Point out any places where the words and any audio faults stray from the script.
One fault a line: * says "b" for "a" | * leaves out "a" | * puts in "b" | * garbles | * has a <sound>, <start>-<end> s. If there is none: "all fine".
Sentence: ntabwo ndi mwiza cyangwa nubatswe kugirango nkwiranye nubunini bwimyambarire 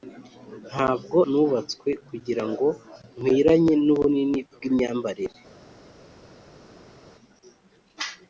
* leaves out "ndi mwiza cyangwa"